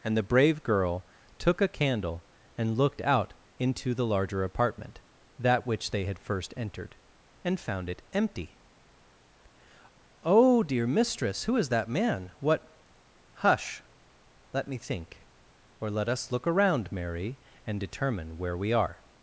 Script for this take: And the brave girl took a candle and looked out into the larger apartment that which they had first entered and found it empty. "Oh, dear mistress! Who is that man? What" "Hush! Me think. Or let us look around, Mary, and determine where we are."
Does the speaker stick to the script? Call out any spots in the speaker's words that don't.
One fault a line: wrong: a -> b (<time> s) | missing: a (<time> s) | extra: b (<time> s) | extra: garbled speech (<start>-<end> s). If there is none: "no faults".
extra: Let (14.5 s)